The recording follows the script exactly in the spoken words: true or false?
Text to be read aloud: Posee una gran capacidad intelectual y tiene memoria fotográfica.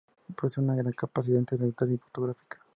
false